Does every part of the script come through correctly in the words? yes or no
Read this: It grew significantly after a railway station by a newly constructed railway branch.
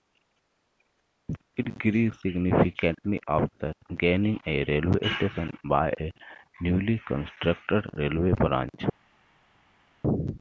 no